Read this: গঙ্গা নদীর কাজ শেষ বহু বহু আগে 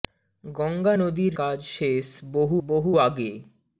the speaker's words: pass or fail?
pass